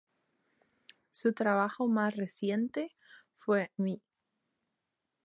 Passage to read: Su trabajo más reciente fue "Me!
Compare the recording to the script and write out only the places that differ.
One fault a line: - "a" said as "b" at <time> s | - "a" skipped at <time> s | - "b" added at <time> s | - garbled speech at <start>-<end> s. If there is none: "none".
none